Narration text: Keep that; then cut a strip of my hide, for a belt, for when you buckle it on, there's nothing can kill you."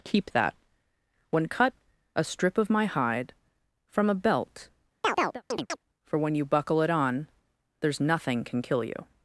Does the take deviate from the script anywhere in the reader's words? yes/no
yes